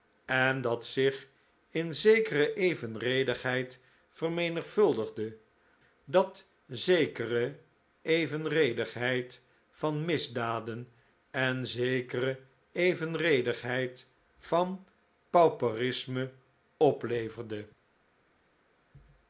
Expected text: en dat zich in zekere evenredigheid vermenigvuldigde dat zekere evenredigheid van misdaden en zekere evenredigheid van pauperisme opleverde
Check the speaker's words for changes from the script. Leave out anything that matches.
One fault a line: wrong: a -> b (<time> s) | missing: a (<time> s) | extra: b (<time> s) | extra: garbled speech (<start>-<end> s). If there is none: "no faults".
no faults